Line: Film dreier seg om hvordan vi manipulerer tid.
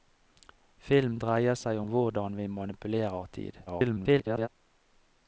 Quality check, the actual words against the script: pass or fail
fail